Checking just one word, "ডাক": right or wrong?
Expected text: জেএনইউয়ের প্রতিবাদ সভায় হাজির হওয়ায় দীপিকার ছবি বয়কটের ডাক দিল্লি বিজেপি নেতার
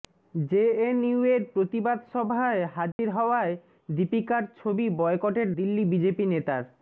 wrong